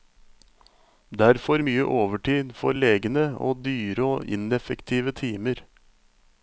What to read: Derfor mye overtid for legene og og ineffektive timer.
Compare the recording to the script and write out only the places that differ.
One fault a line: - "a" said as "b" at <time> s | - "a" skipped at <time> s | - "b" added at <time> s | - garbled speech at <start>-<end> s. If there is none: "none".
- "dyre" added at 3.7 s